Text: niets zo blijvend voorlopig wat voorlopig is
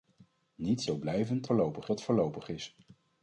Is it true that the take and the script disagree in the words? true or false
false